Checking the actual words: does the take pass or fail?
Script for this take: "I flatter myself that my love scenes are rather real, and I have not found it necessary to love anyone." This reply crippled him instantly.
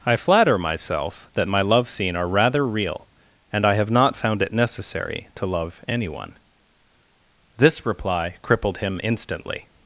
fail